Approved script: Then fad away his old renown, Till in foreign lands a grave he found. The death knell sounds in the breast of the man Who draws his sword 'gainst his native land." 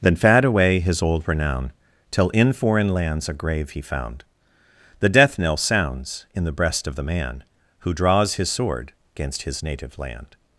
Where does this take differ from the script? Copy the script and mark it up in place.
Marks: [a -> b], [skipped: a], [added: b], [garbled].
Then fad away his old renown, Till in foreign lands a grave he found. The death knell sounds in the breast of the man Who draws his sword 'gainst his native land."